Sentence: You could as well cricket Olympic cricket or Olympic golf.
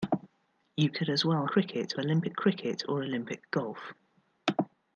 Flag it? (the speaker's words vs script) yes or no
no